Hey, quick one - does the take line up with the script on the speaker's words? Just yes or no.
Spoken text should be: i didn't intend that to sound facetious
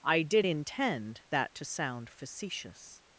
no